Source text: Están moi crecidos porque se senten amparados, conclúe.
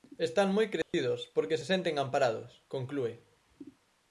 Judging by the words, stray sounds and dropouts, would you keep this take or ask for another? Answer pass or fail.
fail